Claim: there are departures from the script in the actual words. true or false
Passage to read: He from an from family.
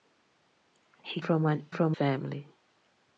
false